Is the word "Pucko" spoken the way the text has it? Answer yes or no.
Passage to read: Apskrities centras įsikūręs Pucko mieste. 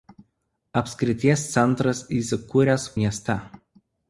no